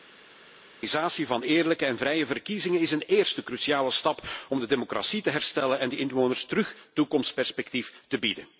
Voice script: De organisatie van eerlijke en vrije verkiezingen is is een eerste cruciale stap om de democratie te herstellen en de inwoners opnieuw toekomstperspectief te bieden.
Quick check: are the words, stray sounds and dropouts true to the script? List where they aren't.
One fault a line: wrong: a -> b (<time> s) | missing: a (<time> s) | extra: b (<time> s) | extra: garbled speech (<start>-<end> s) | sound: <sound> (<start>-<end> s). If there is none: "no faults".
missing: is (2.9 s)